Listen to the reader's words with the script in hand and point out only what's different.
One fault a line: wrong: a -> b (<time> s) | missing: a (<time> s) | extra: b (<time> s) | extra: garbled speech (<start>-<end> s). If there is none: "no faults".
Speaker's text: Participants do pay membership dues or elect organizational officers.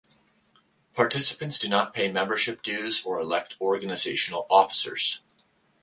extra: not (1.7 s)